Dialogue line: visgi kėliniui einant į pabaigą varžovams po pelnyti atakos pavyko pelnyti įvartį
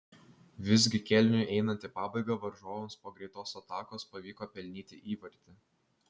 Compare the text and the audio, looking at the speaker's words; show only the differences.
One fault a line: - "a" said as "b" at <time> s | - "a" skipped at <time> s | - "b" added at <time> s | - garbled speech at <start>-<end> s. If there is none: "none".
- "pelnyti" said as "greitos" at 3.2 s